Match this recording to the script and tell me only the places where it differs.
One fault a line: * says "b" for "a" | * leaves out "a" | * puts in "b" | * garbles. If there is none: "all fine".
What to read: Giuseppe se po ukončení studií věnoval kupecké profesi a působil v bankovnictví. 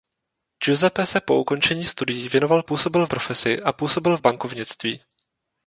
* says "působil" for "kupecké"